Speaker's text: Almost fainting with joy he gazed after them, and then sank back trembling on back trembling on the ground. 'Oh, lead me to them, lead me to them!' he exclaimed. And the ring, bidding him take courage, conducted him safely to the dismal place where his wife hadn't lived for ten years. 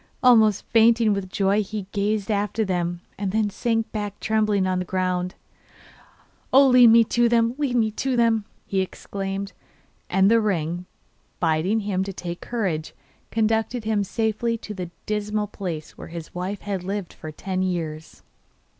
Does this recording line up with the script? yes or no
no